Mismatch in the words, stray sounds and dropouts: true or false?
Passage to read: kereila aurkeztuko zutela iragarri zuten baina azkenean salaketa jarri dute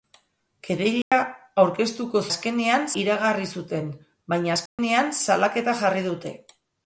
true